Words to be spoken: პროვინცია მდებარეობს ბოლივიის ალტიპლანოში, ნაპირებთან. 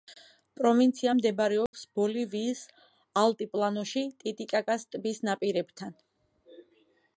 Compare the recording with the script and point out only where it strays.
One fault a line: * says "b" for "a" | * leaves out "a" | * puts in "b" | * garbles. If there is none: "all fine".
* puts in "ტიტიკაკას ტბის"